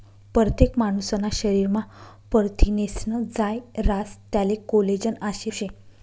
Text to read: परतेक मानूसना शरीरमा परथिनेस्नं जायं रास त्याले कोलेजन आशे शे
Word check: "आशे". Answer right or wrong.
right